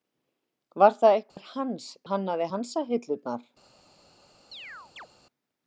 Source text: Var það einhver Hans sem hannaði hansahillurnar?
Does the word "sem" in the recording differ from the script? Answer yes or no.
yes